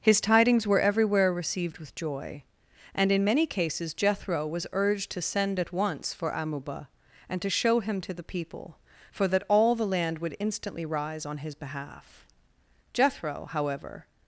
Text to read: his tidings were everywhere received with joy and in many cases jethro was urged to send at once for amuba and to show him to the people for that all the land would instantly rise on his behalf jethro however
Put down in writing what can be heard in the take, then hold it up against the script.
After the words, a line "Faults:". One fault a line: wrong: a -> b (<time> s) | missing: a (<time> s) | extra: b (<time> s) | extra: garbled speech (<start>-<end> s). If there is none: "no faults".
his tidings were everywhere received with joy and in many cases jethro was urged to send at once for amuba and to show him to the people for that all the land would instantly rise on his behalf jethro however
Faults:
no faults